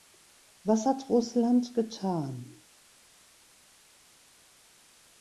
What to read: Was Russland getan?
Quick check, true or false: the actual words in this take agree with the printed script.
false